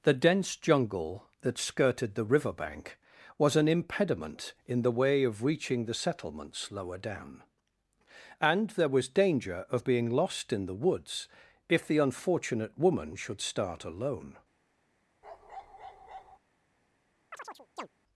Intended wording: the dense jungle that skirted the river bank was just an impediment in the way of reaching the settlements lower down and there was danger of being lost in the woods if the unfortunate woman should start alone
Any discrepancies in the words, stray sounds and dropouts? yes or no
yes